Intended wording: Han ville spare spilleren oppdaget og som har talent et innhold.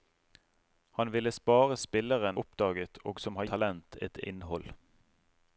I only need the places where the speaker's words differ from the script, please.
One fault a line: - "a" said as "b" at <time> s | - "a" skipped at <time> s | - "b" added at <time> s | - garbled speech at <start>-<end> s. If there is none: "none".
none